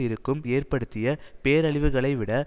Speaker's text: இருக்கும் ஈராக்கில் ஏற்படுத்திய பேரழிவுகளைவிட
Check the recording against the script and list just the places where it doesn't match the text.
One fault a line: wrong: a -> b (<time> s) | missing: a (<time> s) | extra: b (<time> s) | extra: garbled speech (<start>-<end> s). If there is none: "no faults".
missing: ஈராக்கில் (0.4 s)